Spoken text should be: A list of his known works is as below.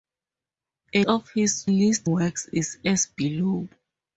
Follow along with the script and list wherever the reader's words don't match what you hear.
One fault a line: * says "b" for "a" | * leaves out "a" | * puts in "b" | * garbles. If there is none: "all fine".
* leaves out "list"
* says "list" for "known"